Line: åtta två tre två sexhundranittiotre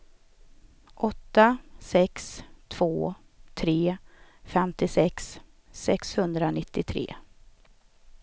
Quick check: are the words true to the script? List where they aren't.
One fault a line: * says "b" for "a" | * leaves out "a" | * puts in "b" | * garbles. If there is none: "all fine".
* puts in "sex"
* says "femtiosex" for "två"